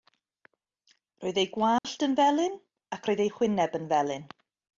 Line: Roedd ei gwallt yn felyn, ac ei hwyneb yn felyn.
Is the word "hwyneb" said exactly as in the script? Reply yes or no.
yes